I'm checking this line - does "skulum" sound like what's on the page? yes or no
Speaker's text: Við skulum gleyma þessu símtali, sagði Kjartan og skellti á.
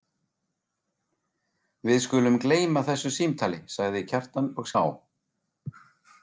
yes